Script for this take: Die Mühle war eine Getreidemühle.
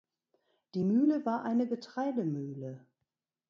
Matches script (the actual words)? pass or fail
pass